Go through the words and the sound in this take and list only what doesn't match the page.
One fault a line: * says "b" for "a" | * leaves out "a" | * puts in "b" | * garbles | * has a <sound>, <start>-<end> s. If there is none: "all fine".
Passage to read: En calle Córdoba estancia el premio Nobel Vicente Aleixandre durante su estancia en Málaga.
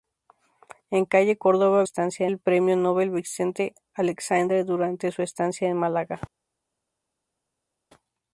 all fine